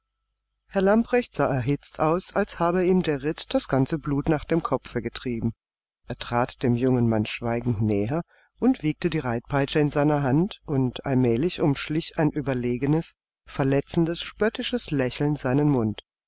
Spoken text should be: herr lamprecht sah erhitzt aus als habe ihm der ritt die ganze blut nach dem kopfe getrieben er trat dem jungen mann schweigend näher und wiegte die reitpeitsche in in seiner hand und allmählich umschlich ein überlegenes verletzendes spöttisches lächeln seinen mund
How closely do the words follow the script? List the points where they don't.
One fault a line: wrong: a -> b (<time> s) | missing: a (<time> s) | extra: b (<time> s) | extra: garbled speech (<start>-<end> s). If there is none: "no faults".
wrong: die -> das (3.5 s)
missing: in (9.9 s)